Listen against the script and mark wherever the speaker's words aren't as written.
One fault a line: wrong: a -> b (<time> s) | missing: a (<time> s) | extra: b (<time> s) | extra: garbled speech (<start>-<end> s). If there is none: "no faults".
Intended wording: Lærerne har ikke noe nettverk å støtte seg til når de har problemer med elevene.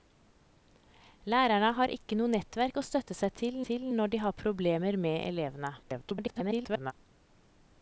extra: til (3.7 s)
extra: garbled speech (5.8-6.9 s)